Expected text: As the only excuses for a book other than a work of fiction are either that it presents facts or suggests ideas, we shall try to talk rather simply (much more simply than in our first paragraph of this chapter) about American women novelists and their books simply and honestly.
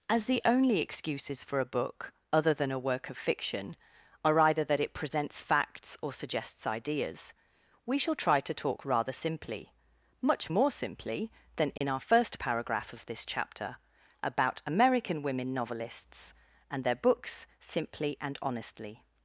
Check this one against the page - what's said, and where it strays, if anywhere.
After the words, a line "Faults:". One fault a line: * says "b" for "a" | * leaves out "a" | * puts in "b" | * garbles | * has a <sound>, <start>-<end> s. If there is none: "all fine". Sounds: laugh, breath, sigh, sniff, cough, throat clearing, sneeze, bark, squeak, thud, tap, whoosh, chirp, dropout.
As the only excuses for a book other than a work of fiction are either that it presents facts or suggests ideas, we shall try to talk rather simply (much more simply than in our first paragraph of this chapter) about American women novelists and their books simply and honestly.
Faults:
* has a dropout, 11.8-11.8 s